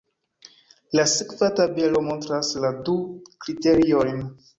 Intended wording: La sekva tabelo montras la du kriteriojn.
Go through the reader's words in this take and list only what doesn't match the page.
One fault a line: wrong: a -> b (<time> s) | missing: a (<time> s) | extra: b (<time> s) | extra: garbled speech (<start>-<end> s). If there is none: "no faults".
no faults